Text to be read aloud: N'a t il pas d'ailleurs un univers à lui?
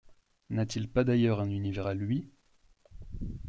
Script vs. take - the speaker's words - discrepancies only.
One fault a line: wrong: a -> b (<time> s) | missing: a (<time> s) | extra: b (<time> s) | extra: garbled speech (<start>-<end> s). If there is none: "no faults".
no faults